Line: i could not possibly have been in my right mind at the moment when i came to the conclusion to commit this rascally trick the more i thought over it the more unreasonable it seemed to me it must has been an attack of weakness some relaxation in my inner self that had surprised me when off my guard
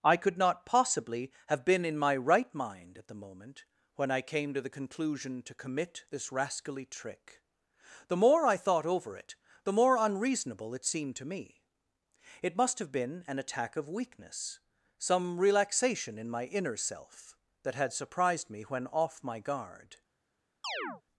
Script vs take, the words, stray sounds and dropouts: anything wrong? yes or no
yes